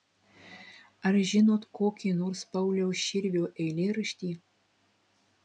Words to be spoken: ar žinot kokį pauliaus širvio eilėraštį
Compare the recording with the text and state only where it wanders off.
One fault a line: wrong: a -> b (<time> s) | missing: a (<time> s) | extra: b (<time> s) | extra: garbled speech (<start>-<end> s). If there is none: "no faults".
extra: nors (2.2 s)